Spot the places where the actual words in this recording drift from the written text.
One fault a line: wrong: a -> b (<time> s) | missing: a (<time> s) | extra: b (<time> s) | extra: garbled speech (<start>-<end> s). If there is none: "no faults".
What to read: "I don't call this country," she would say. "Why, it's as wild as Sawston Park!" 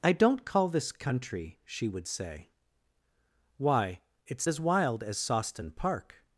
no faults